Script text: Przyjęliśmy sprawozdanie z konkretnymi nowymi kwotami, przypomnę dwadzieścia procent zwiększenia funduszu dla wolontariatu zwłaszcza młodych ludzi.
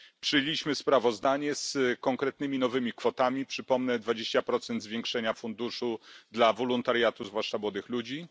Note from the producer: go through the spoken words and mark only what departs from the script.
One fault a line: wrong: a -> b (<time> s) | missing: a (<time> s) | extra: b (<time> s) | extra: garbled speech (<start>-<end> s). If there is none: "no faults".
no faults